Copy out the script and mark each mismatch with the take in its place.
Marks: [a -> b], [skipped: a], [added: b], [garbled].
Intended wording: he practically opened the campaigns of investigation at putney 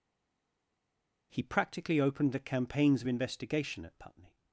he practically opened the campaigns of investigation at putney